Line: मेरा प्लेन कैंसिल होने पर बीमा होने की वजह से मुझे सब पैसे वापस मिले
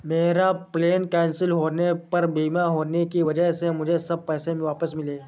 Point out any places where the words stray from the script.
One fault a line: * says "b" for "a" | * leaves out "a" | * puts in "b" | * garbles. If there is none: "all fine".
all fine